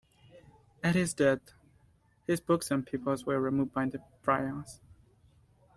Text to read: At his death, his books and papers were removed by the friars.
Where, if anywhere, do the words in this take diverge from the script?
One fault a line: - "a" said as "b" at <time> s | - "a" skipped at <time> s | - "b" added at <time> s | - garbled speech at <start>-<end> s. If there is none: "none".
none